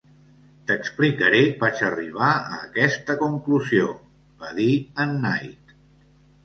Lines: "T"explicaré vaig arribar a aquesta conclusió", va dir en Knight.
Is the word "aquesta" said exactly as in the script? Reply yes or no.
yes